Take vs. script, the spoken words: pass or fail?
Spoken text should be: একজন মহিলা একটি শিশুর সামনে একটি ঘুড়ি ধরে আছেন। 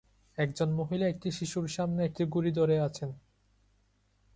pass